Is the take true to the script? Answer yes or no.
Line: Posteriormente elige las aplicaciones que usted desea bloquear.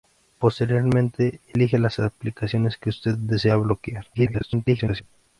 no